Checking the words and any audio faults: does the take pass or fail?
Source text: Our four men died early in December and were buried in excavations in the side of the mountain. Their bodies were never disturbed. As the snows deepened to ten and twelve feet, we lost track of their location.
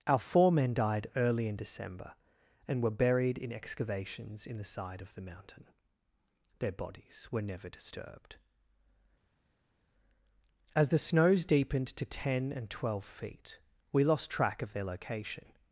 pass